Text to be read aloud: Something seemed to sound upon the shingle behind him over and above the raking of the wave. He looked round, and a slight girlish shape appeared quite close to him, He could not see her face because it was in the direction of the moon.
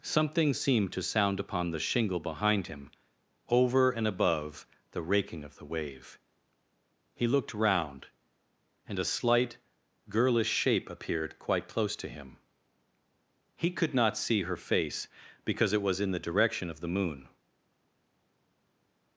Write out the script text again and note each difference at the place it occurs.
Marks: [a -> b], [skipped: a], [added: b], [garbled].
Something seemed to sound upon the shingle behind him over and above the raking of the wave. He looked round, and a slight girlish shape appeared quite close to him, He could not see her face because it was in the direction of the moon.